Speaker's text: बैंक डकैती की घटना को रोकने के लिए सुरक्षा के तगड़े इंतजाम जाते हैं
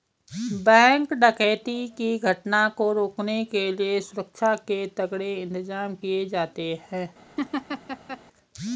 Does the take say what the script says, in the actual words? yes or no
no